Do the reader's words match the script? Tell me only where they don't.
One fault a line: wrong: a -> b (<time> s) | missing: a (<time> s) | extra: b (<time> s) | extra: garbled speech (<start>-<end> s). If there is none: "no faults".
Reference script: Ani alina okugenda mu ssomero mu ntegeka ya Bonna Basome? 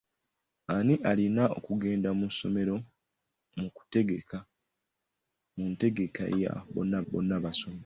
extra: Bonna (7.1 s)